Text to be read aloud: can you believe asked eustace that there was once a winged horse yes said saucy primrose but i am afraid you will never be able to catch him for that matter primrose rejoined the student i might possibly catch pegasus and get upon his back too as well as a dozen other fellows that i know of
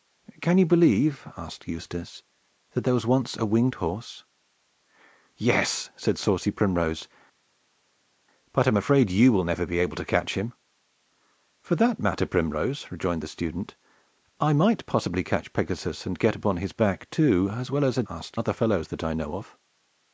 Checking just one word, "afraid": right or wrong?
right